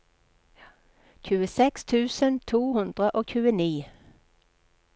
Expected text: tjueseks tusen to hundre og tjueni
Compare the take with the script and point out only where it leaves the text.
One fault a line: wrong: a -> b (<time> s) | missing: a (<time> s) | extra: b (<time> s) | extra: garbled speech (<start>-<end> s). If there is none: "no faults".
no faults